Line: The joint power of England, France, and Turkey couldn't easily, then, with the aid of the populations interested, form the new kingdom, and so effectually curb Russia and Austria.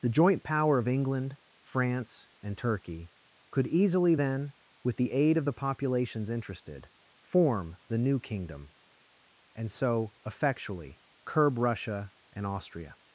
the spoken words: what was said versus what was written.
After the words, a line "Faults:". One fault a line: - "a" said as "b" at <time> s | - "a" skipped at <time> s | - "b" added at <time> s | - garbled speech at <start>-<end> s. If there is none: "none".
The joint power of England, France, and Turkey could easily, then, with the aid of the populations interested, form the new kingdom, and so effectually curb Russia and Austria.
Faults:
- "couldn't" said as "could" at 3.5 s